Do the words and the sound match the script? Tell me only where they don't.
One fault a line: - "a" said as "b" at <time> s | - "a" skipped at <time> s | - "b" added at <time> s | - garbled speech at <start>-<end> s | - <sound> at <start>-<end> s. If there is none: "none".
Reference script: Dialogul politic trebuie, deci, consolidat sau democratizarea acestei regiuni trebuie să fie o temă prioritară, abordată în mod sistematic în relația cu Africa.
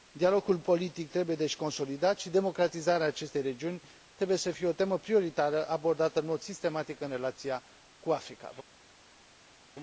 - "sau" said as "și" at 2.2 s